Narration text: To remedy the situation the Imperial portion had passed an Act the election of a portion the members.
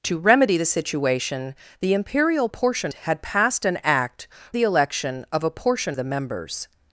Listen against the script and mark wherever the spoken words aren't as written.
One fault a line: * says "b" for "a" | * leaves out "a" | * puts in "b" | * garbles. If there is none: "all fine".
all fine